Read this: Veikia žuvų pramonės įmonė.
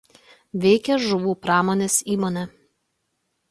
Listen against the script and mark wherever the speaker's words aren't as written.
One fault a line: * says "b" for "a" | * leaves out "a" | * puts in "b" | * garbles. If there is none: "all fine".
all fine